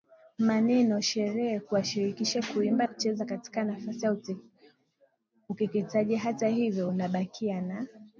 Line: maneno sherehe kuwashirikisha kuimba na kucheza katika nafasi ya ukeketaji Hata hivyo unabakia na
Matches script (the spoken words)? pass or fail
fail